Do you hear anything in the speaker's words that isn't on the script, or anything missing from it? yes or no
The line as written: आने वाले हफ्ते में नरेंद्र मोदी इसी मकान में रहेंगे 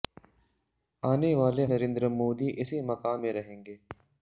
yes